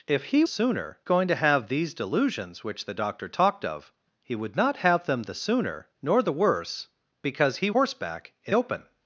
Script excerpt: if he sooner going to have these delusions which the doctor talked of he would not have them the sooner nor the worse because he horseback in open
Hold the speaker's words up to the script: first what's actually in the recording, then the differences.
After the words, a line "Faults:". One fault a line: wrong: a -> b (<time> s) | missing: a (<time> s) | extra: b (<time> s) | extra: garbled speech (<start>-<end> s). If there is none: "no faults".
if he sooner going to have these delusions which the doctor talked of he would not have them the sooner nor the worse because he horseback in open
Faults:
no faults